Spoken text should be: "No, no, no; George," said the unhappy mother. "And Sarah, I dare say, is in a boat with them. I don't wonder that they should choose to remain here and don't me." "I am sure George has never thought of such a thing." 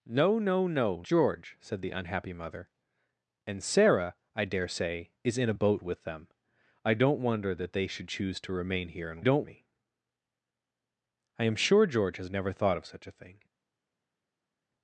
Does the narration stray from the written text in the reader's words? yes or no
no